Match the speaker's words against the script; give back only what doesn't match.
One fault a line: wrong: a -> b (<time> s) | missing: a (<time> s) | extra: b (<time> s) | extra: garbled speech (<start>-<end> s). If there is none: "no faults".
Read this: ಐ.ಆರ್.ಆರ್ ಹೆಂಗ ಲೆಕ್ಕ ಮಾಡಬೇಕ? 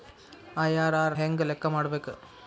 no faults